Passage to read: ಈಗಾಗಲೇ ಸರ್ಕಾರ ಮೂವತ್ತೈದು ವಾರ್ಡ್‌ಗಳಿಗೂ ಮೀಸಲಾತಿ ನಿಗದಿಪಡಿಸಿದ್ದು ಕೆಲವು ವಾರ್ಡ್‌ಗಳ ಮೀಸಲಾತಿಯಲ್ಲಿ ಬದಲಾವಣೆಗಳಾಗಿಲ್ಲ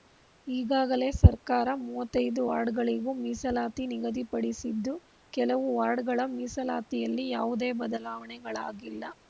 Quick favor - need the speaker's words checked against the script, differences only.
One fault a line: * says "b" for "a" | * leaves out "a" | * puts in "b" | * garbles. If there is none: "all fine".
* puts in "ಯಾವುದೇ"